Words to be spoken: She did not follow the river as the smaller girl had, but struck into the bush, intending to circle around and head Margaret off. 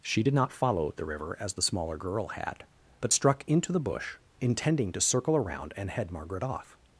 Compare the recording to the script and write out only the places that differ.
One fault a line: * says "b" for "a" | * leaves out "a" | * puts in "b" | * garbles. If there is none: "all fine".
all fine